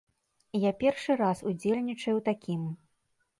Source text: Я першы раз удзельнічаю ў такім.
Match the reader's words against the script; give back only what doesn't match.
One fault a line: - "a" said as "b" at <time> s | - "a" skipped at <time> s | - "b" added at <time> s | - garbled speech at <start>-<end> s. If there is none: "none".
none